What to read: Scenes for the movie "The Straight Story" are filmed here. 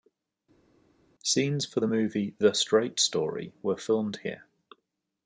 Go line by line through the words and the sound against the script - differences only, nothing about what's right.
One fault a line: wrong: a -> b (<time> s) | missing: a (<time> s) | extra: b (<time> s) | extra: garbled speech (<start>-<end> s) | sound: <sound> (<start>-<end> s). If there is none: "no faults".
wrong: are -> were (3.6 s)